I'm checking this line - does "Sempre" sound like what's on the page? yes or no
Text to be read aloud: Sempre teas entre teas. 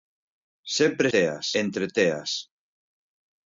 yes